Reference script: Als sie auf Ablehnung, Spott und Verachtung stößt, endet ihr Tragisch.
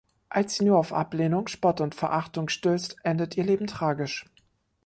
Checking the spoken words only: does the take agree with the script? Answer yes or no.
no